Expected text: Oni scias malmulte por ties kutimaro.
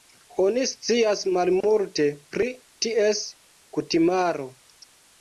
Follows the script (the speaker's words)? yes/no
no